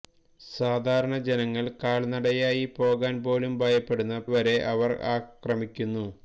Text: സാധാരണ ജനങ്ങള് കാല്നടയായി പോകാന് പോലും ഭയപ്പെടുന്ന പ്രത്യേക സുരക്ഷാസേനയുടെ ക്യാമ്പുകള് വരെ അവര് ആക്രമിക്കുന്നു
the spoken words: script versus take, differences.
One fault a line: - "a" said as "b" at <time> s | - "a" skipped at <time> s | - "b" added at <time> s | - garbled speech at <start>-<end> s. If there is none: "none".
- "പ്രത്യേക സുരക്ഷാസേനയുടെ ക്യാമ്പുകള്" skipped at 4.2 s